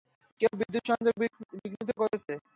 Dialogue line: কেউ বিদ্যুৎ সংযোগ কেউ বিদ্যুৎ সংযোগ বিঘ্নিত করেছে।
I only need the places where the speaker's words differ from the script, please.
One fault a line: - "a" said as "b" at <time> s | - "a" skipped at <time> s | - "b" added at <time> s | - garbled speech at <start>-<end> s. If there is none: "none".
- "কেউ বিদ্যুৎ সংযোগ" skipped at 1.1 s